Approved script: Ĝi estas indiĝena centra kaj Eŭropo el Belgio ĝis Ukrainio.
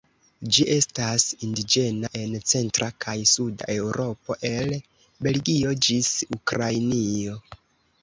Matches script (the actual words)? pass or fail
fail